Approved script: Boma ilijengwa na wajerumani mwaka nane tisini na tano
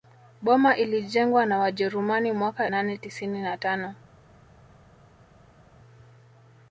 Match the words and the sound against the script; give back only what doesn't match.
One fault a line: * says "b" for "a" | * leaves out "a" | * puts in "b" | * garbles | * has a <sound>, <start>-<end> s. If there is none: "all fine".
all fine